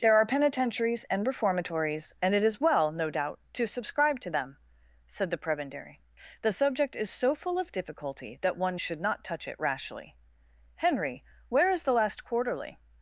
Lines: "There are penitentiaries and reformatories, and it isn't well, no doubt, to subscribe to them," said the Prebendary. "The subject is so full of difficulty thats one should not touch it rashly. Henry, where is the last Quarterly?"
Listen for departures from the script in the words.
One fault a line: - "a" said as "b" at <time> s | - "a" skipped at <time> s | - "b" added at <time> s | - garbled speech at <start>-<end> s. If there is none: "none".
- "isn't" said as "is" at 2.4 s
- "thats" said as "that" at 8.4 s